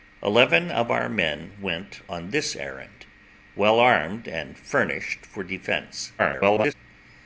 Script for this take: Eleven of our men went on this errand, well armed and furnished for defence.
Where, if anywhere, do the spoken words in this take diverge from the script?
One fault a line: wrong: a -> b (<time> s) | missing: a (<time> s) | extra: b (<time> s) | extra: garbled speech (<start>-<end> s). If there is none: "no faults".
extra: garbled speech (6.2-6.7 s)